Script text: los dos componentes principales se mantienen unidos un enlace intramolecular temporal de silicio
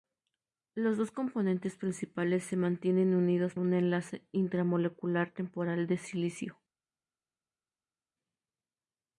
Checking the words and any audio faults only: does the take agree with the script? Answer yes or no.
yes